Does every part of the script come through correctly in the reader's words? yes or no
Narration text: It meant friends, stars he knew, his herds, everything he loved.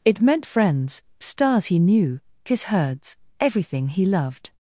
yes